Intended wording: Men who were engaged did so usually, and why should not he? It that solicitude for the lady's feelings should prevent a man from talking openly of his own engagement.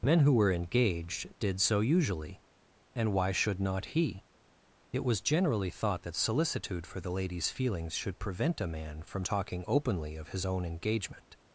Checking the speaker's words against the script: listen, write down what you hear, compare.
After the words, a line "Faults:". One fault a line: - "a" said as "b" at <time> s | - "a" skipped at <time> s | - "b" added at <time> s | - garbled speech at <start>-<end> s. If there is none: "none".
Men who were engaged did so usually, and why should not he? It was generally thought that solicitude for the lady's feelings should prevent a man from talking openly of his own engagement.
Faults:
- "was generally thought" added at 5.0 s